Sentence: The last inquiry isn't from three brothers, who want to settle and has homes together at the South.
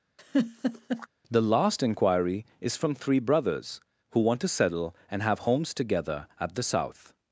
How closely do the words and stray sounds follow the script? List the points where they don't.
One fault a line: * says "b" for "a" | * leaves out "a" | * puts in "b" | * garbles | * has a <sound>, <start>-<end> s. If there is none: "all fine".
* has a laugh, 0.2-1.1 s
* says "is" for "isn't"
* says "have" for "has"